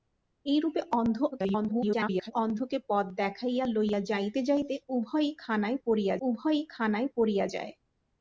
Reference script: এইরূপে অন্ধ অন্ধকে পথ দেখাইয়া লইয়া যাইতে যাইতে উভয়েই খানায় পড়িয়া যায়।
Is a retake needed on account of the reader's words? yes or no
yes